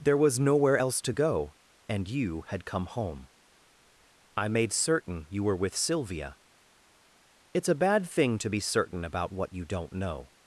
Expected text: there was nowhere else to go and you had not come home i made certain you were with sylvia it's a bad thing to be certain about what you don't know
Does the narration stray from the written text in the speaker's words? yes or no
yes